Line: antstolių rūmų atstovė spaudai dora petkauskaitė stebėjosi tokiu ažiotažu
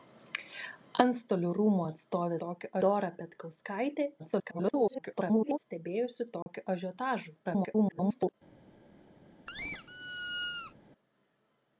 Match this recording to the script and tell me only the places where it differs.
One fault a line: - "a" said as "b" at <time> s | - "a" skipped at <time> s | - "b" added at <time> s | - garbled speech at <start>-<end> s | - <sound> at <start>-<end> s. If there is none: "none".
- "spaudai" said as "tokiu" at 2.4 s
- garbled speech at 4.2-5.6 s
- dropout at 6.4-6.5 s
- garbled speech at 7.4-8.3 s
- squeak at 9.5-10.7 s